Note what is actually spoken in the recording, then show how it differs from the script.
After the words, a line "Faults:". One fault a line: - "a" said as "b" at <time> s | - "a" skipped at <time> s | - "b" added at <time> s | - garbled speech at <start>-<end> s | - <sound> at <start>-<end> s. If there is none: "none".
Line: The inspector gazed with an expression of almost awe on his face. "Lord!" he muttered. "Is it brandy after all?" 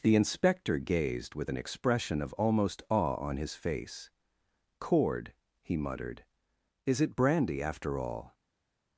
The inspector gazed with an expression of almost awe on his face. "Cord!" he muttered. "Is it brandy after all?"
Faults:
- "Lord" said as "Cord" at 4.8 s